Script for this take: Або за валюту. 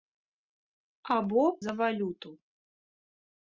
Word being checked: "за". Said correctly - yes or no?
yes